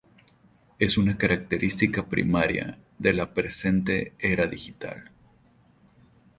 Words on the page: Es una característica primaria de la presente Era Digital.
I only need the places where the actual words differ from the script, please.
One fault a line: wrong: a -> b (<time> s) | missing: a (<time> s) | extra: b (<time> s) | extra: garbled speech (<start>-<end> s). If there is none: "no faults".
no faults